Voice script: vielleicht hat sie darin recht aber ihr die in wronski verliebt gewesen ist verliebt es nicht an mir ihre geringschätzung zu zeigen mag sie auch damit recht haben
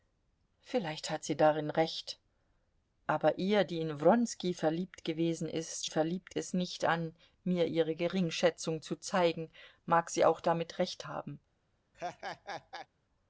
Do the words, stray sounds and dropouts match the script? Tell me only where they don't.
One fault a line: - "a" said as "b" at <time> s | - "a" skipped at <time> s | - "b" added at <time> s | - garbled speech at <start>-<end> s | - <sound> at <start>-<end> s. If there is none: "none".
- laugh at 11.9-12.9 s